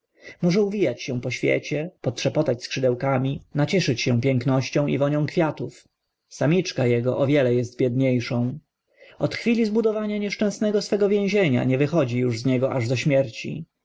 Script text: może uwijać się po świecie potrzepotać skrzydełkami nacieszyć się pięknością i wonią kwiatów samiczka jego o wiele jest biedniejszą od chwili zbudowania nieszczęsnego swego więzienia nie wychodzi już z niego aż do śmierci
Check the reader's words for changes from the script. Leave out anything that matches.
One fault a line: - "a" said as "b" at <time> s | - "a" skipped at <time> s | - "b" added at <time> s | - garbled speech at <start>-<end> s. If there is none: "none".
none